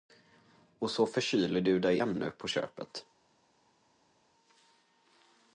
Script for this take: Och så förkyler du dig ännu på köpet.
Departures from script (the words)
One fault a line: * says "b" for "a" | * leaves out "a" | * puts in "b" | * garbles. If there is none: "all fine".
all fine